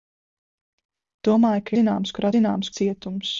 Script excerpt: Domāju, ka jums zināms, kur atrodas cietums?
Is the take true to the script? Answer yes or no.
no